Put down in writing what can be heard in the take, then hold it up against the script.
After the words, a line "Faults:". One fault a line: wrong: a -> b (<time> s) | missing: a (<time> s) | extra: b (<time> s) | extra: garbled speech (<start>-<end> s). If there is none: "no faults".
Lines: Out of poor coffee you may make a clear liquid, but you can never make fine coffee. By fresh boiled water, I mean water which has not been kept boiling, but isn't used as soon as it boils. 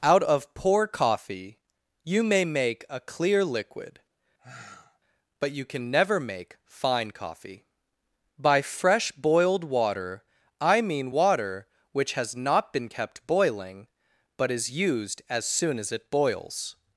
Out of poor coffee you may make a clear liquid, but you can never make fine coffee. By fresh boiled water, I mean water which has not been kept boiling, but is used as soon as it boils.
Faults:
wrong: isn't -> is (14.5 s)